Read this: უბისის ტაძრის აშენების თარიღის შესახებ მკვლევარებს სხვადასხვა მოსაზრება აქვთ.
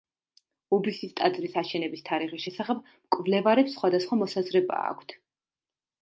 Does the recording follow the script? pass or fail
pass